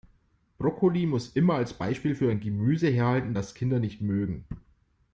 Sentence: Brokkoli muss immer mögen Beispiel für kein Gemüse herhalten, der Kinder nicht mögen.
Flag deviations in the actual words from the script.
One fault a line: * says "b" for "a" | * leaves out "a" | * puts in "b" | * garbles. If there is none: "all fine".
* says "als" for "mögen"
* says "ein" for "kein"
* says "das" for "der"